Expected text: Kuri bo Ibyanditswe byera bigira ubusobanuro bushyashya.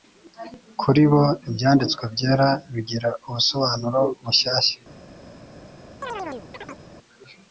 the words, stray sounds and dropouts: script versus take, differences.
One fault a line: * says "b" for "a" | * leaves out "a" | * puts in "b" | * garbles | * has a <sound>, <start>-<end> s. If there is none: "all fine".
* has a chirp, 6.0-6.8 s